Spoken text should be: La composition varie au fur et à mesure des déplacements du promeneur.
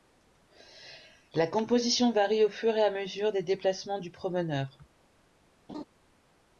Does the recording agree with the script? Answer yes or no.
yes